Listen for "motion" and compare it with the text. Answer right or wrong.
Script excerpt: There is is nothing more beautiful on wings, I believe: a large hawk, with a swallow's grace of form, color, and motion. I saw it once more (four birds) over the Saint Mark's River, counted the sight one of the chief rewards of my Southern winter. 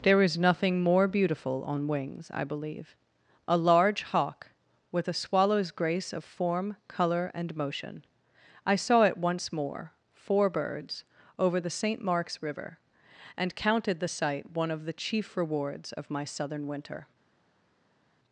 right